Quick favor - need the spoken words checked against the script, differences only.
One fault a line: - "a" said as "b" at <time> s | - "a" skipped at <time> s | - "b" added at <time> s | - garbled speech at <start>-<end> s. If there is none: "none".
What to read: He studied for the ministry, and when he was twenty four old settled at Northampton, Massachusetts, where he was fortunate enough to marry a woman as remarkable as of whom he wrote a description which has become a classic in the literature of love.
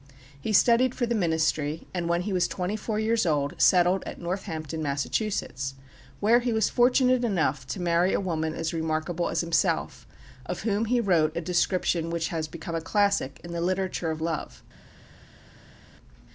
- "years" added at 3.0 s
- "himself" added at 9.4 s